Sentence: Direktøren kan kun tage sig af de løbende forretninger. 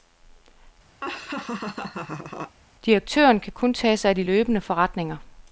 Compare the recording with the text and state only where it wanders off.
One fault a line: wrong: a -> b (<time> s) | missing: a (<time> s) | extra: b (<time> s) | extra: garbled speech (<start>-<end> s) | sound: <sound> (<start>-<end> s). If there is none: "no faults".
sound: laugh (1.0-2.6 s)